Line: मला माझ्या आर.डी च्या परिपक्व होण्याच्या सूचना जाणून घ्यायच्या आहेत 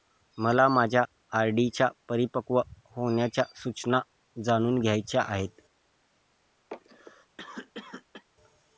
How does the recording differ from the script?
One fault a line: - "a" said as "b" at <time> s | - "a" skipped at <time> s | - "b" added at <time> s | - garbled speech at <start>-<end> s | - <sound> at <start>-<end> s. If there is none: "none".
- cough at 6.7-8.2 s